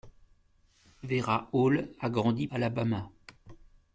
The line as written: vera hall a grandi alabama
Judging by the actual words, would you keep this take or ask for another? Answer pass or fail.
pass